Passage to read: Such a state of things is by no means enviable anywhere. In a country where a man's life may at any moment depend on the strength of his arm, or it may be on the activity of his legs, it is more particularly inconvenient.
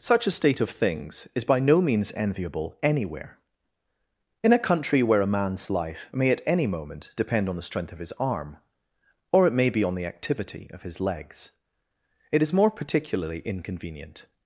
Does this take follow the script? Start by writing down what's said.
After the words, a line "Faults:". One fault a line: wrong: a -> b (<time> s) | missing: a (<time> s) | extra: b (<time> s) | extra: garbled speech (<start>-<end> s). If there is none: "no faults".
Such a state of things is by no means enviable anywhere. In a country where a man's life may at any moment depend on the strength of his arm, or it may be on the activity of his legs, it is more particularly inconvenient.
Faults:
no faults